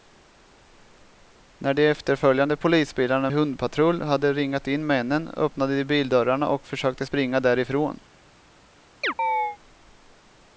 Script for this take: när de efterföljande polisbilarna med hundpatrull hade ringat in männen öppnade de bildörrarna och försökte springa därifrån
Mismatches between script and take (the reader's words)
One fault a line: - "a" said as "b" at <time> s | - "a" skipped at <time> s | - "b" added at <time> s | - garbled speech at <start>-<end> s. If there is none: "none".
- "med" skipped at 3.3 s